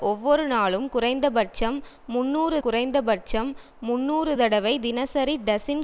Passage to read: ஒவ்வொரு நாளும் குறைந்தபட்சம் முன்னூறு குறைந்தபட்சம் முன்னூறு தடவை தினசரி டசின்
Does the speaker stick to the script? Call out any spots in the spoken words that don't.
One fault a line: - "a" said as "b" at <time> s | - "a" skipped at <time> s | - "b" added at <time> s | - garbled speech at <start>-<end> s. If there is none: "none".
none